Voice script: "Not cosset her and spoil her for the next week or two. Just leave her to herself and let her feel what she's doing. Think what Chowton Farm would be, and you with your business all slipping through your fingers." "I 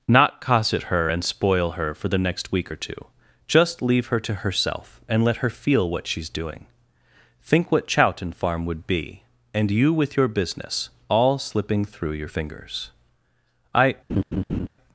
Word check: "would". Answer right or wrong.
right